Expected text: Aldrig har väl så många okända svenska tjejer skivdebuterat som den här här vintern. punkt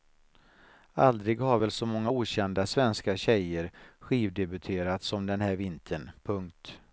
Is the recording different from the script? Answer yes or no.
yes